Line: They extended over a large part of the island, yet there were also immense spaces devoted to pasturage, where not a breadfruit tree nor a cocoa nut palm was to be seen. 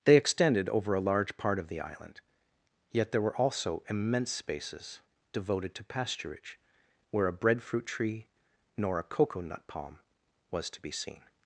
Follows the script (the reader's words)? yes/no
no